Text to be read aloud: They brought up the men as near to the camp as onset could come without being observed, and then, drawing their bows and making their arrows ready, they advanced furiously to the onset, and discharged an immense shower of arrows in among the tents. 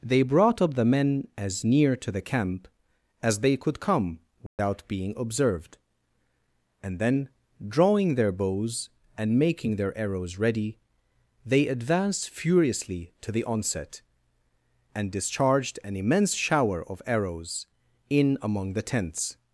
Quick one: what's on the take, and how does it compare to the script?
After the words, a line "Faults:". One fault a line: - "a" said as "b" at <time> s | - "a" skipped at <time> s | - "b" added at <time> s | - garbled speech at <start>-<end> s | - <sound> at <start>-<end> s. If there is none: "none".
They brought up the men as near to the camp as they could come without being observed, and then, drawing their bows and making their arrows ready, they advanced furiously to the onset, and discharged an immense shower of arrows in among the tents.
Faults:
- "onset" said as "they" at 3.4 s
- dropout at 4.5-4.6 s